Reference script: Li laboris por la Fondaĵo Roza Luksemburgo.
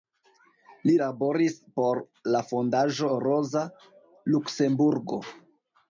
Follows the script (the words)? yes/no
yes